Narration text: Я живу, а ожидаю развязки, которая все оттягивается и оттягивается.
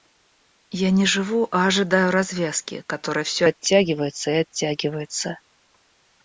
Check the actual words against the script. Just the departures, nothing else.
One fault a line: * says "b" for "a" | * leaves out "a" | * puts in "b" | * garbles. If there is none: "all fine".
* puts in "не"